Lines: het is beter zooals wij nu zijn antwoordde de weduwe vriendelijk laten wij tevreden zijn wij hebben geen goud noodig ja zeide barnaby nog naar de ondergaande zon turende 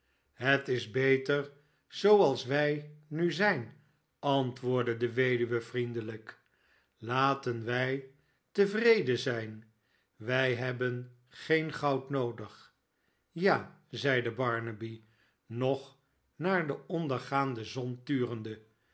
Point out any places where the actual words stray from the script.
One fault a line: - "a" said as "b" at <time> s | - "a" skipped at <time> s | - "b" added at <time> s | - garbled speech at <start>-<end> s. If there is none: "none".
none